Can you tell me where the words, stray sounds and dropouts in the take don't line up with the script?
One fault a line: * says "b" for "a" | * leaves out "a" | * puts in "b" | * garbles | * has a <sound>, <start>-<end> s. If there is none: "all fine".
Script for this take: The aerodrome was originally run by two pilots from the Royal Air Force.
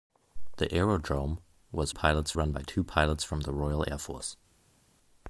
* says "pilots" for "originally"